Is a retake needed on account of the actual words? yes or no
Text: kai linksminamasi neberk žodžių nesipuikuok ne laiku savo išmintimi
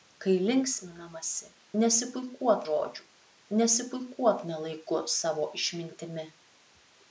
yes